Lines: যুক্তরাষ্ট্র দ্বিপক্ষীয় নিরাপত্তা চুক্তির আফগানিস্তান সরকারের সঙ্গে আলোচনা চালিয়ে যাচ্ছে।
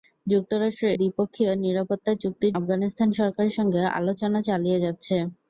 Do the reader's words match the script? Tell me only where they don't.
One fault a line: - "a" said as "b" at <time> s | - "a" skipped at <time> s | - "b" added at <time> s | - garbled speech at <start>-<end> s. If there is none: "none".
none